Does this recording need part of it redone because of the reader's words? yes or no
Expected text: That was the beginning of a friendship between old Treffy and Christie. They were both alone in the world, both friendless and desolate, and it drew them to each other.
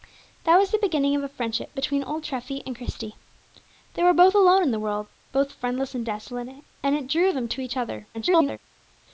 yes